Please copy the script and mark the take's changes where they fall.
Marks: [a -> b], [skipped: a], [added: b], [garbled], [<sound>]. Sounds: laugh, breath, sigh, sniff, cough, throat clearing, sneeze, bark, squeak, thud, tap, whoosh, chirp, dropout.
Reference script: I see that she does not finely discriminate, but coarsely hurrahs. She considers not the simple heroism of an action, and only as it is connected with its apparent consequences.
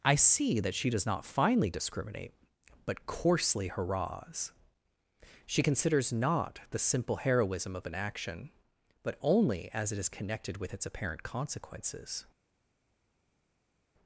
I see that she does not finely discriminate, but coarsely hurrahs. She considers not the simple heroism of an action, [and -> but] only as it is connected with its apparent consequences.